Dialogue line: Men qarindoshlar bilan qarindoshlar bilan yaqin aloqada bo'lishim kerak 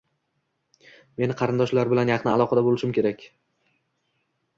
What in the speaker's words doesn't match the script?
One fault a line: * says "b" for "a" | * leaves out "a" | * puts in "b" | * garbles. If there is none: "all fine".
* leaves out "qarindoshlar bilan"